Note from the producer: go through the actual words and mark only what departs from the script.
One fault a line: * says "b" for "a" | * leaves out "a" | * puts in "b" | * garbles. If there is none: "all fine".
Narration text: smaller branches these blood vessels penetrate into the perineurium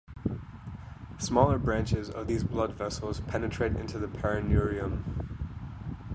* puts in "of"